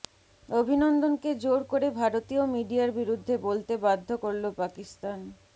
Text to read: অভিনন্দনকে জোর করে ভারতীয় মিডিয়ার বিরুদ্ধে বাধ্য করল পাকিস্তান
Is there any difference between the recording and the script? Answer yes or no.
yes